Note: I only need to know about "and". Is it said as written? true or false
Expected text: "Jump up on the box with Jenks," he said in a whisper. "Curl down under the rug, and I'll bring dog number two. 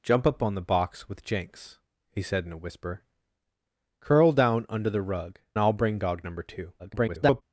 false